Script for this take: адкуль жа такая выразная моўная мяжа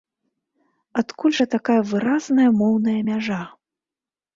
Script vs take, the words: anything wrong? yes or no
no